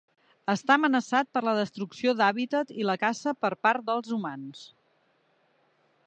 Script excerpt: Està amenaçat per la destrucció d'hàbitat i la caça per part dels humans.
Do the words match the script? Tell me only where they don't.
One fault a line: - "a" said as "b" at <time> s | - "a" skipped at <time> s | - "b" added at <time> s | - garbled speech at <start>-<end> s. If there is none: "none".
none